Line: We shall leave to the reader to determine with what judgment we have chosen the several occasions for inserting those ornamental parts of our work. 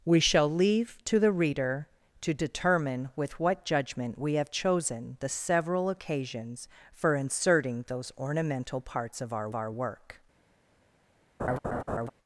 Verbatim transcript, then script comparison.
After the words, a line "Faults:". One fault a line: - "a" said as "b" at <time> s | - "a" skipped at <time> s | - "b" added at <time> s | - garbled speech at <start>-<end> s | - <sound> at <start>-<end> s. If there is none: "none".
We shall leave to the reader to determine with what judgment we have chosen the several occasions for inserting those ornamental parts of our our work.
Faults:
- "our" added at 9.5 s
- laugh at 11.4-12.1 s